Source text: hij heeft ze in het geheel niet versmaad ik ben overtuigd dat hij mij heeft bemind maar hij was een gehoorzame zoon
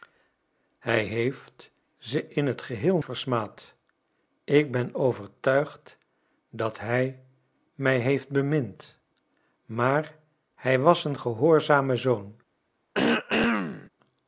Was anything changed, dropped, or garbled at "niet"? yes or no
yes